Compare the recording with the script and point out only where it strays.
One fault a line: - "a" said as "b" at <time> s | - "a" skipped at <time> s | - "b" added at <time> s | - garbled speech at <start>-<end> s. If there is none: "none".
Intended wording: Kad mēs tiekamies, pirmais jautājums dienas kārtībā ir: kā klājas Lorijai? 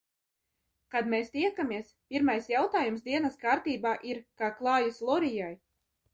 none